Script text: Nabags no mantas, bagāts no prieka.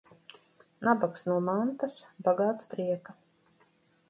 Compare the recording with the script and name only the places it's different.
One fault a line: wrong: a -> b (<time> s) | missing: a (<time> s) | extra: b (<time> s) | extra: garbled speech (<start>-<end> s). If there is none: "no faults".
missing: no (2.7 s)